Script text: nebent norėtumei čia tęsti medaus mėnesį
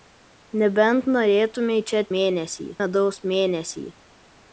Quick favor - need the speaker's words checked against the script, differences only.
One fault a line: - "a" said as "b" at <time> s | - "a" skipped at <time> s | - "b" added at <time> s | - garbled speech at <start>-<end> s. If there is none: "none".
- "tęsti" said as "mėnesį" at 2.2 s